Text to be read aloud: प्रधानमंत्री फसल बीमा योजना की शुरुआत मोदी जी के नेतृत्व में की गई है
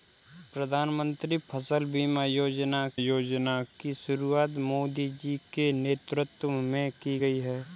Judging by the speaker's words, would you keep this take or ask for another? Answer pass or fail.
fail